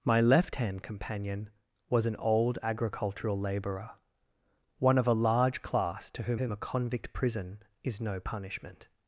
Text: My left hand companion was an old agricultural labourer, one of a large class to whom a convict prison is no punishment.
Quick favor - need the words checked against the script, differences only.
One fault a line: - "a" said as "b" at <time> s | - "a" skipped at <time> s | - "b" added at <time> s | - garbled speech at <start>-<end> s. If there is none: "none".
- "whom" added at 6.3 s